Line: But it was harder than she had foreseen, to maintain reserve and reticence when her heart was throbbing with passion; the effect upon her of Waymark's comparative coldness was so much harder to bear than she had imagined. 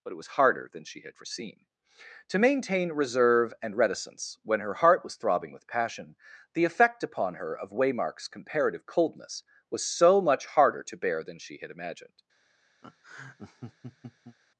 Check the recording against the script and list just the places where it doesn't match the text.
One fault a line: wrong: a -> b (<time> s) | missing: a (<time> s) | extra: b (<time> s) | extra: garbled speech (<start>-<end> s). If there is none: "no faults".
no faults